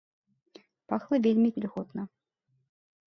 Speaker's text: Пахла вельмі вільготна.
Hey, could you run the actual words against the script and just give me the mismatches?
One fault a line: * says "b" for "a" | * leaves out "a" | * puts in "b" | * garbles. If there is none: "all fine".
all fine